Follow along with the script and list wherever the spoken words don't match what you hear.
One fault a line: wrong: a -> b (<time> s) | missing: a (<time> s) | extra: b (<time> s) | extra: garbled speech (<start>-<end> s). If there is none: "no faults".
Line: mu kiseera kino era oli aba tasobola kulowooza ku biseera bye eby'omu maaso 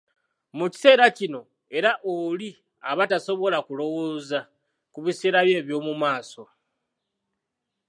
no faults